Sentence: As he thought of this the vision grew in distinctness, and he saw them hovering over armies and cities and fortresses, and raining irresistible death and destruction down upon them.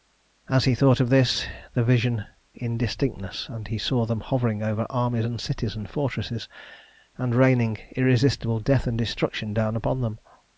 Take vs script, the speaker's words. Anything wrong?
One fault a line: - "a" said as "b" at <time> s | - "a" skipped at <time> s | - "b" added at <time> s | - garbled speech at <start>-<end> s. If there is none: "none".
- "grew" skipped at 2.2 s